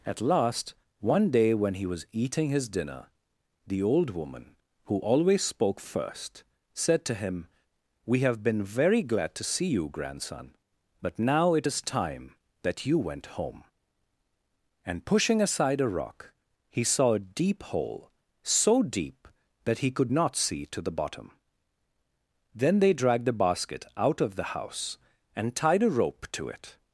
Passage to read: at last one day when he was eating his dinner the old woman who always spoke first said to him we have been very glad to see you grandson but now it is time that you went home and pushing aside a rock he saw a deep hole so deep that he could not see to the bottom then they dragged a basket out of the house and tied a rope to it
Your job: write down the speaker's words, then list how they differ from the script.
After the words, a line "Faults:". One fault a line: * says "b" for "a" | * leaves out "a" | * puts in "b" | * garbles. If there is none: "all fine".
at last one day when he was eating his dinner the old woman who always spoke first said to him we have been very glad to see you grandson but now it is time that you went home and pushing aside a rock he saw a deep hole so deep that he could not see to the bottom then they dragged the basket out of the house and tied a rope to it
Faults:
* says "the" for "a"